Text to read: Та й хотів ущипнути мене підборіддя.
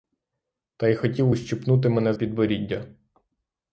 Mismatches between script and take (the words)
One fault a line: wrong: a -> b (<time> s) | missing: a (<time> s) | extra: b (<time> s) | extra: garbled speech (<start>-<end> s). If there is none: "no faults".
no faults